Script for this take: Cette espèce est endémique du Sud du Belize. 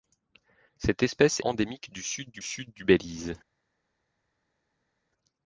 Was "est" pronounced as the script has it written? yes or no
no